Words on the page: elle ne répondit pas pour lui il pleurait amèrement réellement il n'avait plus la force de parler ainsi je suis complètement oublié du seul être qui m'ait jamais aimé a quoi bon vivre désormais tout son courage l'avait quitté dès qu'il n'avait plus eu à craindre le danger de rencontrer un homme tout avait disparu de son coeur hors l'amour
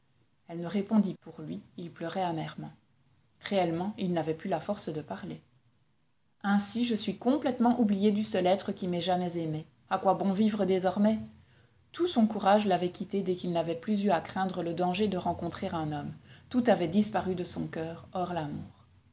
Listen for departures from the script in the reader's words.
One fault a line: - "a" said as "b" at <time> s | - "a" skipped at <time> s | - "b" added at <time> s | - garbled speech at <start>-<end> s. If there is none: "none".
- "pas" skipped at 1.1 s